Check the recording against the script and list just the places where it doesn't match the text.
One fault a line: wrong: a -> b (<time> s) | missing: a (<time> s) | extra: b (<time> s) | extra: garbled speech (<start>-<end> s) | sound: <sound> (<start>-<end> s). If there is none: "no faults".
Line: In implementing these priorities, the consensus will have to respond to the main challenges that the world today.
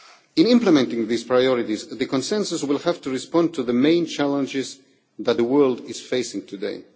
extra: is facing (5.9 s)